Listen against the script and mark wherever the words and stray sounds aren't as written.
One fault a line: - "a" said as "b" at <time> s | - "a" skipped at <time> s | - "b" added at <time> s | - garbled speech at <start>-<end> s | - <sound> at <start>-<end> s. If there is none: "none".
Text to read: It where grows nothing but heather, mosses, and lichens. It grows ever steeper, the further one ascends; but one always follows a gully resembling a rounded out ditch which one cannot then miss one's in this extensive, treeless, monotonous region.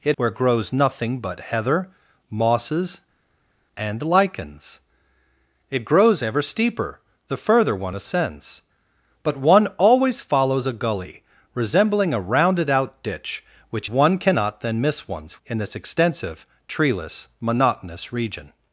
none